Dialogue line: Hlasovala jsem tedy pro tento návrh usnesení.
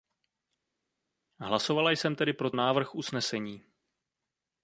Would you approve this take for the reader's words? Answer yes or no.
no